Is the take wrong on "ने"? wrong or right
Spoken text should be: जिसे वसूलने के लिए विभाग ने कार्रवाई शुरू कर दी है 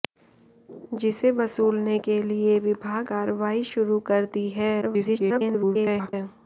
wrong